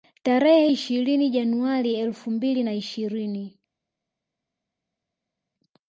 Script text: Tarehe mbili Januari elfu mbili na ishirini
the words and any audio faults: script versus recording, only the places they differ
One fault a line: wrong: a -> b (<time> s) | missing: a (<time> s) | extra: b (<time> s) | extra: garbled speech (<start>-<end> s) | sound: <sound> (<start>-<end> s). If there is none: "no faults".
wrong: mbili -> ishirini (0.7 s)